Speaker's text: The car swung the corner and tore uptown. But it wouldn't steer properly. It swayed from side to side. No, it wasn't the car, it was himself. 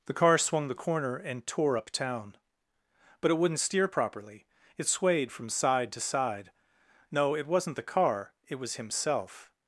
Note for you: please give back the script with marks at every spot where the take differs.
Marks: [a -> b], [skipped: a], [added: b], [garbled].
The car swung the corner and tore uptown. But it wouldn't steer properly. It swayed from side to side. No, it wasn't the car, it was himself.